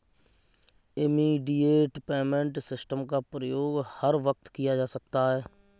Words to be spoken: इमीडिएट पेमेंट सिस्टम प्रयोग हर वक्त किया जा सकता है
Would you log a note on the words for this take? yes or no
yes